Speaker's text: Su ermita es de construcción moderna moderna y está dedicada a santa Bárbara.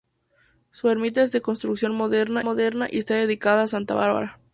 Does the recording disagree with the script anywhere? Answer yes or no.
no